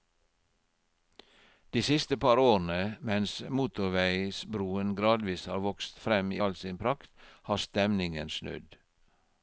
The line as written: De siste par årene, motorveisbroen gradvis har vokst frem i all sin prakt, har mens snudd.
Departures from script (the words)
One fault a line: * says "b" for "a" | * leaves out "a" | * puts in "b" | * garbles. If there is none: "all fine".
* puts in "mens"
* says "stemningen" for "mens"